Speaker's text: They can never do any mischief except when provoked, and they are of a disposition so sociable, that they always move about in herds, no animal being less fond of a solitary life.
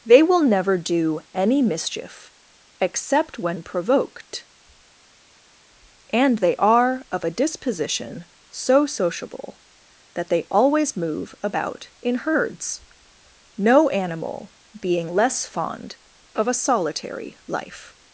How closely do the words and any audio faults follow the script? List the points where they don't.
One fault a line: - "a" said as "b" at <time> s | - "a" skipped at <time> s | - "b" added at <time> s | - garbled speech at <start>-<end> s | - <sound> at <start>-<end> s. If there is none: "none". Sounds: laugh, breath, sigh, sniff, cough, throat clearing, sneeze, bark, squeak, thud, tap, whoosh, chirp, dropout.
- "can" said as "will" at 0.2 s